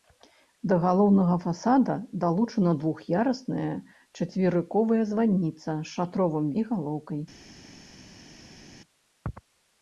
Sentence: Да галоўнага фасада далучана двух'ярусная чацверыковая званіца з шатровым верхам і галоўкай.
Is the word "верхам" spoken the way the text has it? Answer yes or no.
no